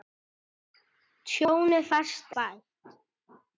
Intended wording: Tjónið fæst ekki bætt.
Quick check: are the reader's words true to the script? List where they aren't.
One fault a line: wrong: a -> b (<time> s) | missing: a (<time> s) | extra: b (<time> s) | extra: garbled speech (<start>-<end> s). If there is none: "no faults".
missing: ekki (2.3 s)